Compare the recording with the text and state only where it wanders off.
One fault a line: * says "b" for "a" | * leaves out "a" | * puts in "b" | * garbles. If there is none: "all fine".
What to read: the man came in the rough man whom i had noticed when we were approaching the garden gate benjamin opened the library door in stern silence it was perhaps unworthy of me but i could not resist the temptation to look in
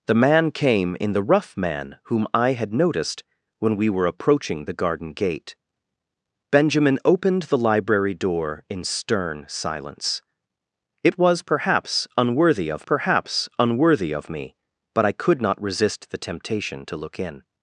* puts in "perhaps unworthy of"